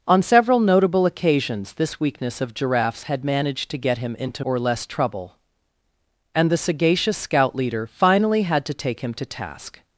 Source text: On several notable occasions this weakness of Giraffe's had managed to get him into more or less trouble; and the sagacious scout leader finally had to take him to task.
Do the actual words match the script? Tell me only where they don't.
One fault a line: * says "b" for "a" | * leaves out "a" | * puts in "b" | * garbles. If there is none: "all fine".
* leaves out "more"